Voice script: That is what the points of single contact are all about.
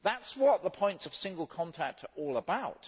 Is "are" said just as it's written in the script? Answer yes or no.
yes